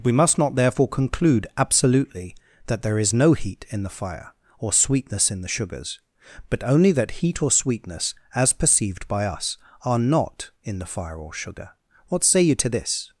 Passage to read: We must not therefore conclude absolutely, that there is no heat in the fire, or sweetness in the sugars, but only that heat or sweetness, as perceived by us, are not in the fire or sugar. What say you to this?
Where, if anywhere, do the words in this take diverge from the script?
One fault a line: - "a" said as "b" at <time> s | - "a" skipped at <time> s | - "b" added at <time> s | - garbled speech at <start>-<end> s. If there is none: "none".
none